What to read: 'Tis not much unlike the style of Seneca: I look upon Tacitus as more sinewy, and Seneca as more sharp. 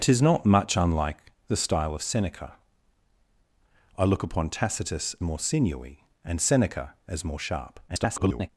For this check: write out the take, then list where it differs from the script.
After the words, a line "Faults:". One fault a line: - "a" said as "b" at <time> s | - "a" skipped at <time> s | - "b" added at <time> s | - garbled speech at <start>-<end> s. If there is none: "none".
'Tis not much unlike the style of Seneca: I look upon Tacitus more sinewy, and Seneca as more sharp. [garbled]
Faults:
- "as" skipped at 5.2 s
- garbled speech at 7.9-8.5 s